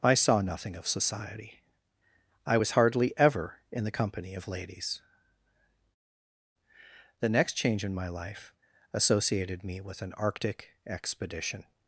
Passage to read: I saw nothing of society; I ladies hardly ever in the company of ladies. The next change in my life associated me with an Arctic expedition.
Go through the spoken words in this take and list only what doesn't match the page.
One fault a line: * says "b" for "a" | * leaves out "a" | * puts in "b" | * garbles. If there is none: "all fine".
* says "was" for "ladies"